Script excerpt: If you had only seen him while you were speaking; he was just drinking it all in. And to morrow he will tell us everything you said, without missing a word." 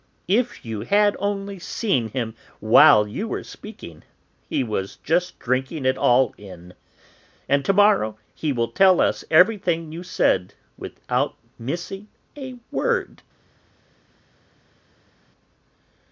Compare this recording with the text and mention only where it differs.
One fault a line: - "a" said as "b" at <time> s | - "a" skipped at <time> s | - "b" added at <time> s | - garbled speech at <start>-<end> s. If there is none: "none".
none